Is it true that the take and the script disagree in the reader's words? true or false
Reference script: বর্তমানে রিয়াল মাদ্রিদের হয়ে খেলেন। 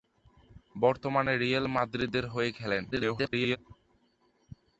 true